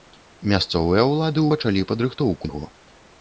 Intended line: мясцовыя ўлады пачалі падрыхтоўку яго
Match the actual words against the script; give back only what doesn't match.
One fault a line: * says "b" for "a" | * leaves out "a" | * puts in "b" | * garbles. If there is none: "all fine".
all fine